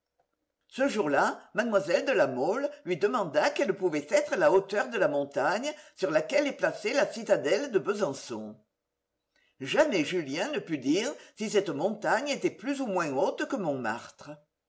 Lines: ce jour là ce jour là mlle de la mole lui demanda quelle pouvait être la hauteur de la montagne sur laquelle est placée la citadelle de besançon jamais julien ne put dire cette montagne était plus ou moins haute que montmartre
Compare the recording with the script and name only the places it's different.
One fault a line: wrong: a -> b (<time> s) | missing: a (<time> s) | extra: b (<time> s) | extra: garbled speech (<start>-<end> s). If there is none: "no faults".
missing: ce jour là (1.4 s)
extra: si (11.4 s)